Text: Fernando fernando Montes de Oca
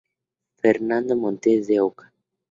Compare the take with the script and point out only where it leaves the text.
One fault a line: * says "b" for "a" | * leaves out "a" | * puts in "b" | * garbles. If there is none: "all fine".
* leaves out "fernando"